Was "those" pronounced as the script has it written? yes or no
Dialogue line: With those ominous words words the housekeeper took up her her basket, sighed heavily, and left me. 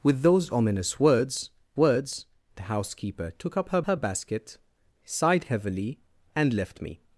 yes